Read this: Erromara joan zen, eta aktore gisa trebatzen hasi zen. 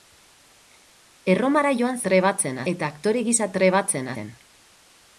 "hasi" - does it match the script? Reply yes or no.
no